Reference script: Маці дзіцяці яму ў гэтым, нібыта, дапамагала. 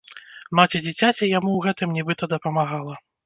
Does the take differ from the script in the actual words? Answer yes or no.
no